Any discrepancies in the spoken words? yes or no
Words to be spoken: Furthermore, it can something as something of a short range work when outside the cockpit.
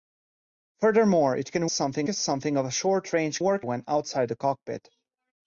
no